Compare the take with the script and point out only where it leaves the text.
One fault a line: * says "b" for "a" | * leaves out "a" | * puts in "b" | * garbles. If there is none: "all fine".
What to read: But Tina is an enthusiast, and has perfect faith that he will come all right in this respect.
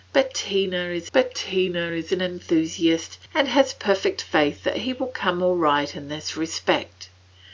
* puts in "but Tina is"